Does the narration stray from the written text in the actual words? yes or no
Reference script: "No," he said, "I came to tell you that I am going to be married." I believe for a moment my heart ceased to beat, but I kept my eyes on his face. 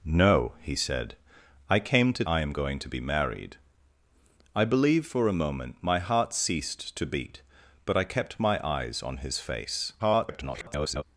yes